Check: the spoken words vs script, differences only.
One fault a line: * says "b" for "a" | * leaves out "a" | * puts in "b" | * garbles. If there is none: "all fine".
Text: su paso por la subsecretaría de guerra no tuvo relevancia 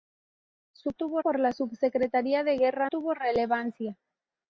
* says "tuvo" for "paso"
* leaves out "no"